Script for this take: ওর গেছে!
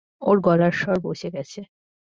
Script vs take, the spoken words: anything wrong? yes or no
yes